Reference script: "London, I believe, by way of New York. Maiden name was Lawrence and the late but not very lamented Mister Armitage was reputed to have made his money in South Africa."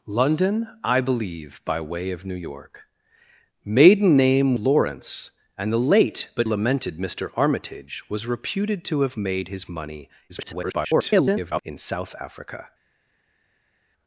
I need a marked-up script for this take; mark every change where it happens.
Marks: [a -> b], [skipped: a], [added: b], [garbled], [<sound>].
"London, I believe, by way of New York. Maiden name [skipped: was] Lawrence and the late but [skipped: not very] lamented Mister Armitage was reputed to have made his money [garbled] in South Africa."